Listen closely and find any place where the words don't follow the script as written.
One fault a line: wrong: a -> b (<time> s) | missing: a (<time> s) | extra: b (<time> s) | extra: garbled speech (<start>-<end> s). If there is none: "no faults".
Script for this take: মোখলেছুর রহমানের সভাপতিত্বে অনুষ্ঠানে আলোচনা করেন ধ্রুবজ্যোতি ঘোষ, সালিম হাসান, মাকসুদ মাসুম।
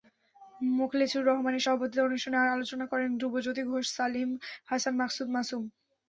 no faults